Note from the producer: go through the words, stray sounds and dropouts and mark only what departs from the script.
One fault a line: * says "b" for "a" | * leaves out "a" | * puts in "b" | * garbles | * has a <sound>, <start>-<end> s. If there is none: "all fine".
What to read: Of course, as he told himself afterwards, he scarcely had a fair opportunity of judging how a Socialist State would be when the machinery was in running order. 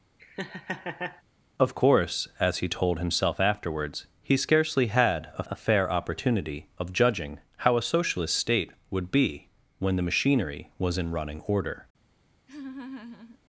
* has a laugh, 0.2-1.2 s
* puts in "a"
* has a laugh, 12.5-13.4 s